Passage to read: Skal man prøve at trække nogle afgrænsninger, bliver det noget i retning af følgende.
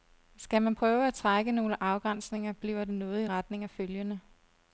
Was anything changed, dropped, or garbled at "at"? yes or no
no